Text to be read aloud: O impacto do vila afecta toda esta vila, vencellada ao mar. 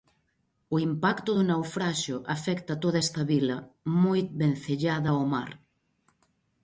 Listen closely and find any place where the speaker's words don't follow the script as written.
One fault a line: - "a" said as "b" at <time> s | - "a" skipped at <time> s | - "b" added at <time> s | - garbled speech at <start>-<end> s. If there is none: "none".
- "vila" said as "naufraxio" at 1.5 s
- "moi" added at 4.0 s